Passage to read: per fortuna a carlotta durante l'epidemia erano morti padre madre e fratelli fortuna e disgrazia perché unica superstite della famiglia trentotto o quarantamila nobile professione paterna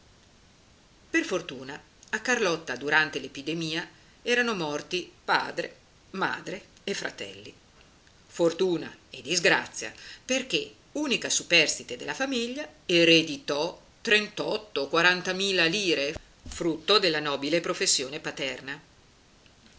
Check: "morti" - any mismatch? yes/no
no